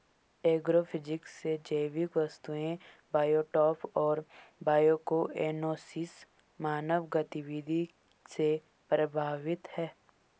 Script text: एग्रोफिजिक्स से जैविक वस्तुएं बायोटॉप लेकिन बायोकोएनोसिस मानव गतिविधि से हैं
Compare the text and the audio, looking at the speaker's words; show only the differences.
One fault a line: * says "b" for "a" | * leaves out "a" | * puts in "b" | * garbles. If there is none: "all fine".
* says "और" for "लेकिन"
* puts in "प्रभावित"